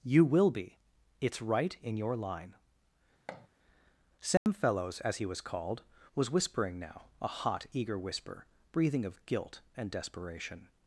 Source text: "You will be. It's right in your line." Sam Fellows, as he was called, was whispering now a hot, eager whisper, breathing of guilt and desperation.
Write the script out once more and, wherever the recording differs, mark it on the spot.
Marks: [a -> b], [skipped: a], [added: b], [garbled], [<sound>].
"You will be. It's right in your line." [thud] Sam [dropout] Fellows, as he was called, was whispering now a hot, eager whisper, breathing of guilt and desperation.